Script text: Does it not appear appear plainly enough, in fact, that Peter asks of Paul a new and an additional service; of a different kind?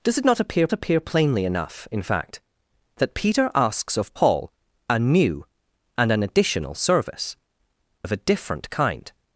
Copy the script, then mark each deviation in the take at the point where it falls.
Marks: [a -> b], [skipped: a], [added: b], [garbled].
Does it not appear appear plainly enough, in fact, that Peter asks of Paul a new and an additional service; of a different kind?